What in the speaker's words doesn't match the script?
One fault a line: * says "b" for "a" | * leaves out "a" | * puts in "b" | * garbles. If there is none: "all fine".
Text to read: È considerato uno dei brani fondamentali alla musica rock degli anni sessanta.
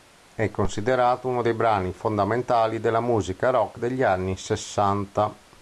* says "della" for "alla"